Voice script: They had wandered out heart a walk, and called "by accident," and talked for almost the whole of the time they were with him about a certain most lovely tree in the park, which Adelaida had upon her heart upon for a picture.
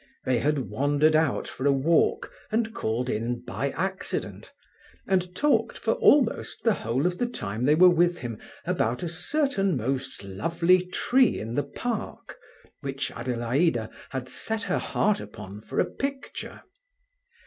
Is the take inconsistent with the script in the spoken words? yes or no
yes